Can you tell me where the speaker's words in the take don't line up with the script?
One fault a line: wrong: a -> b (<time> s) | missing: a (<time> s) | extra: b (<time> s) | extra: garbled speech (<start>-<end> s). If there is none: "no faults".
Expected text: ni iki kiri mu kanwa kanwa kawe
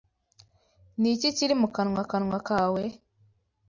no faults